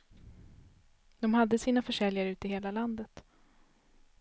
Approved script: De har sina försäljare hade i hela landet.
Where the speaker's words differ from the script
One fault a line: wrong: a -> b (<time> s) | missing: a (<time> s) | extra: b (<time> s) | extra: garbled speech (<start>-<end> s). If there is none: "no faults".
wrong: har -> hade (1.3 s)
wrong: hade -> ute (2.3 s)